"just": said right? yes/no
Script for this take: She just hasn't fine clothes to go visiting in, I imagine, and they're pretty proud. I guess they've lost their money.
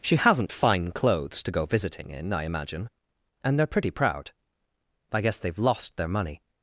no